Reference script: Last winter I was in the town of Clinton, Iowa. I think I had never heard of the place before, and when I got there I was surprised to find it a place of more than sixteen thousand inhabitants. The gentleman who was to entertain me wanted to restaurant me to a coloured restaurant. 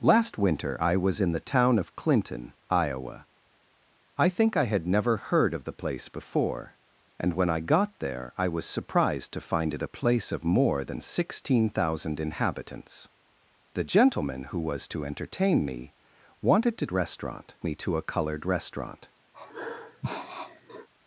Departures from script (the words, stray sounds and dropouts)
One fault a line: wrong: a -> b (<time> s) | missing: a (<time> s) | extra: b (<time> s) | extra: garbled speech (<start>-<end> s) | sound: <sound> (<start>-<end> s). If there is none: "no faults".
sound: sniff (19.3-20.9 s)